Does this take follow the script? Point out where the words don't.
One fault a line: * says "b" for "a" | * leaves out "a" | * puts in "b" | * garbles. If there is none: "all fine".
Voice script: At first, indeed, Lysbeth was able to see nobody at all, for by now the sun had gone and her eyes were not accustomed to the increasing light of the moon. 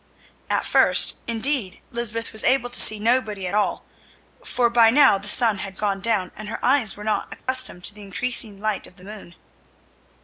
* puts in "down"